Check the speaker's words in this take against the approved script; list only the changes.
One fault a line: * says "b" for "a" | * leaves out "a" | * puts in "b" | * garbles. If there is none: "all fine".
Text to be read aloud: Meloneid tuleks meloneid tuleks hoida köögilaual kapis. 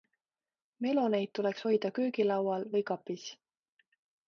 * leaves out "meloneid tuleks"
* puts in "või"